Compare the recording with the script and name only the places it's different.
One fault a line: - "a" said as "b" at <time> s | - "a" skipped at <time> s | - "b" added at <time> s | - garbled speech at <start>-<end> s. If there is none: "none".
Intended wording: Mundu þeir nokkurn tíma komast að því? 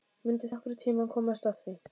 - "þeir" skipped at 0.5 s